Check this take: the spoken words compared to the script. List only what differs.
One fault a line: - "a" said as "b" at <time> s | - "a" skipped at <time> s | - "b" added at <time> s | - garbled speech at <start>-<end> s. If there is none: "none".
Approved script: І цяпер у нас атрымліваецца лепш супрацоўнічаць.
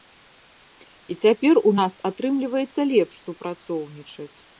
none